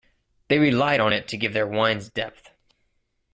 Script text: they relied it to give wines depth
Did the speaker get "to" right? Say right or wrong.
right